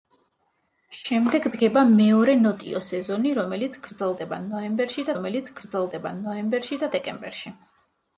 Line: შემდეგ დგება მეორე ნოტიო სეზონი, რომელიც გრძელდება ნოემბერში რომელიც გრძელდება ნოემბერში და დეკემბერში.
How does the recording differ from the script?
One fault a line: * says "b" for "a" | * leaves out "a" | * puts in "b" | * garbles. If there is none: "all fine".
all fine